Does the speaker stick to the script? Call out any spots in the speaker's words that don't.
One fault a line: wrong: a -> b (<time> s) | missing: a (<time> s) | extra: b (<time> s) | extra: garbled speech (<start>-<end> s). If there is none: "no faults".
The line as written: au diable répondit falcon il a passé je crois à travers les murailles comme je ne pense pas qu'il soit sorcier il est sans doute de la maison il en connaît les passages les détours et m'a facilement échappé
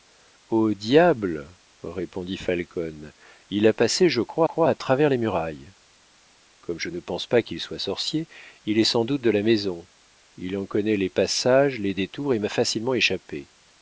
extra: crois (4.4 s)